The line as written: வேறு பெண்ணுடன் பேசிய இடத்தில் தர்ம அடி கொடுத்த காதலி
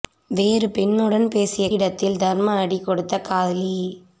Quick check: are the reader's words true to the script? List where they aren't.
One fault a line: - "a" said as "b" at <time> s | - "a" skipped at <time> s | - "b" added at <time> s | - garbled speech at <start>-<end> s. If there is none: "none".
none